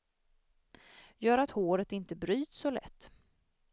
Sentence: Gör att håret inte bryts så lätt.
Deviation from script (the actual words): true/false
false